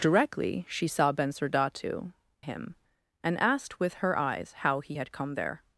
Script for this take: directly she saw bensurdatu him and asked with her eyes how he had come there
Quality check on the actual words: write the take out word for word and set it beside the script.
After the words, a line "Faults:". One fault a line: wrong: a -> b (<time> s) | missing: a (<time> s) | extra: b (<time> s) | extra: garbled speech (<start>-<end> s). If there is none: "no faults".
directly she saw bensurdatu him and asked with her eyes how he had come there
Faults:
no faults